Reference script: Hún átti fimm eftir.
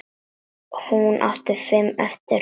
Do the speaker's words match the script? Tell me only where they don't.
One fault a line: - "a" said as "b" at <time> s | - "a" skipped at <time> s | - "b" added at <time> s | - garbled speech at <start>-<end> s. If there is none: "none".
none